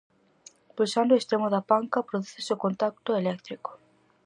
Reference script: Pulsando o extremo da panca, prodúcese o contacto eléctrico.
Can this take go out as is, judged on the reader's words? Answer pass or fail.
pass